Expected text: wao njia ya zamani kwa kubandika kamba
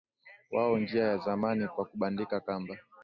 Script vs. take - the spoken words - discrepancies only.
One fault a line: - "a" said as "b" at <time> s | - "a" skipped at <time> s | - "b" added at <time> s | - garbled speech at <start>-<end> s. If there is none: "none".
none